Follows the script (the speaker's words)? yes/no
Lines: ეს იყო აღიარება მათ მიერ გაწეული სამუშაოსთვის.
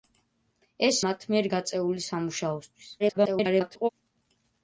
no